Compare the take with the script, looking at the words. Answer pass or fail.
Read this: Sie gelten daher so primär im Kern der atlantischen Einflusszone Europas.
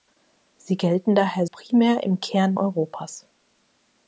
fail